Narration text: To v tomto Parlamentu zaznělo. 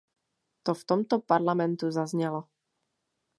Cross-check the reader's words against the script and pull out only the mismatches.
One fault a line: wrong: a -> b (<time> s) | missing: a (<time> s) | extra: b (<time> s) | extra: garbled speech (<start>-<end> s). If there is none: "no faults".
no faults